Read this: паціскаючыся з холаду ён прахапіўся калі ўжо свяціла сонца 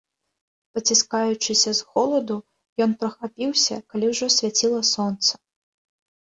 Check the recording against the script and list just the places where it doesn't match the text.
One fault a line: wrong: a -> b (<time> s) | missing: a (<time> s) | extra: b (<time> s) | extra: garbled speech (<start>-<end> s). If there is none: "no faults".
no faults